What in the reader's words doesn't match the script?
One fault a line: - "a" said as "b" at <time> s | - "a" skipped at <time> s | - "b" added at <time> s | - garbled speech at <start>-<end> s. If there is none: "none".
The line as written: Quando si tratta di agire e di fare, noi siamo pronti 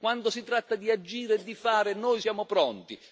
none